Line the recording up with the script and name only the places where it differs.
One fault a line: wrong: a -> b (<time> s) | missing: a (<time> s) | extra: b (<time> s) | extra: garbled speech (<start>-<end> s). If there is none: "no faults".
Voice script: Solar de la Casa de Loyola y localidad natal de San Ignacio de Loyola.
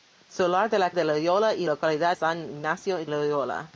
missing: Casa (0.9 s)
missing: natal de (2.2 s)
missing: de (3.0 s)